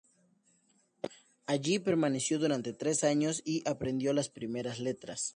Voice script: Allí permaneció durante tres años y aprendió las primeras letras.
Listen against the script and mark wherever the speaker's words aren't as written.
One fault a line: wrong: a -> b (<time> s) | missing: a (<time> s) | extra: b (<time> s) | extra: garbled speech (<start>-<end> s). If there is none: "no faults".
no faults